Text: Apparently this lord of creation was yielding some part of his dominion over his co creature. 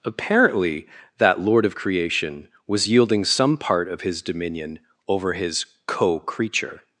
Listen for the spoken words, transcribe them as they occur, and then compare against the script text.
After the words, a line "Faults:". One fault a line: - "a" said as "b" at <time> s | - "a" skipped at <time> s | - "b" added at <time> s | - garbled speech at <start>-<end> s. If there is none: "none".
Apparently that lord of creation was yielding some part of his dominion over his co creature.
Faults:
- "this" said as "that" at 1.2 s